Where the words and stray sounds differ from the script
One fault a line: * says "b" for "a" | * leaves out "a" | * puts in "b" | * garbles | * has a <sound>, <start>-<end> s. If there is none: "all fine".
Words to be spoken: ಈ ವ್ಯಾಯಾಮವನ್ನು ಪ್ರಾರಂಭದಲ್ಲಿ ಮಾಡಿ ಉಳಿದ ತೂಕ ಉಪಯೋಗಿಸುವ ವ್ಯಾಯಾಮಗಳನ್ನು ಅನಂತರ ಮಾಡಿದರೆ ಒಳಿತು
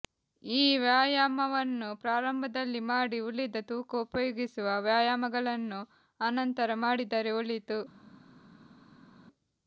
all fine